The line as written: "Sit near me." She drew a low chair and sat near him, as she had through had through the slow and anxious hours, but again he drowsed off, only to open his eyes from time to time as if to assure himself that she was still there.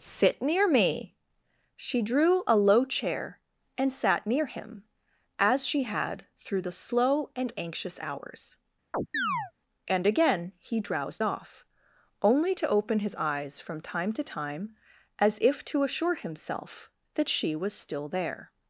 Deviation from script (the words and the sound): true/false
true